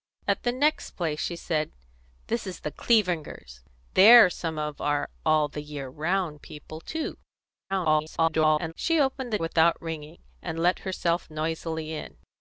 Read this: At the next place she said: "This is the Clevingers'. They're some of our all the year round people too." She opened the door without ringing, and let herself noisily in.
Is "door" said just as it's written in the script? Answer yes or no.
no